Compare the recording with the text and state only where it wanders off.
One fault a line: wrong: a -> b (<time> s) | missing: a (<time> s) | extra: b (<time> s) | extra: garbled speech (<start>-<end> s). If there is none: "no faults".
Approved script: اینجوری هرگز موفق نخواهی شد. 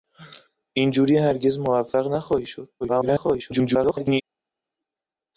extra: garbled speech (2.8-4.2 s)